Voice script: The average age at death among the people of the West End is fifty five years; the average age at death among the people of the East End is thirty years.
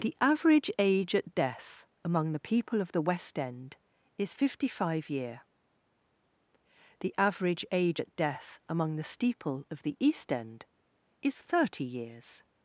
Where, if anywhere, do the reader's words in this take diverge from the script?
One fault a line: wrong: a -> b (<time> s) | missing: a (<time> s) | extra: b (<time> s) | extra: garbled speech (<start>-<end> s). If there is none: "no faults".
wrong: years -> year (5.1 s)
wrong: people -> steeple (9.0 s)